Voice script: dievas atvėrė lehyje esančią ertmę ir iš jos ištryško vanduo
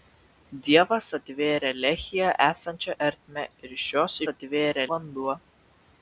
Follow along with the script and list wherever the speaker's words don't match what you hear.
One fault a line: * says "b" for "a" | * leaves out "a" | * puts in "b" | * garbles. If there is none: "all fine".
* says "atvėrė" for "ištryško"